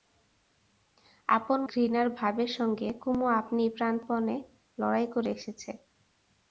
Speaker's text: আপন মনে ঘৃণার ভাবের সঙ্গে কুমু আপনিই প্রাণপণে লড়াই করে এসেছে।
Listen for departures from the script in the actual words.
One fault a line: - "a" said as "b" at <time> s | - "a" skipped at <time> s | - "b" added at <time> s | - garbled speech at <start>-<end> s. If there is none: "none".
- "মনে" skipped at 1.6 s